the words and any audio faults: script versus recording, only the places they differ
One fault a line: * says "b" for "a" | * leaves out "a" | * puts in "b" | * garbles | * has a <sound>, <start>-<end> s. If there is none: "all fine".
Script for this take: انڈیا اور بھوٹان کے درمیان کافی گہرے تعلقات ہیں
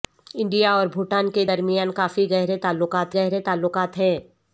* puts in "گہرے تعلقات"